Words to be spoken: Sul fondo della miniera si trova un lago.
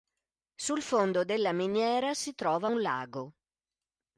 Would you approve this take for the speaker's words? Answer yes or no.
yes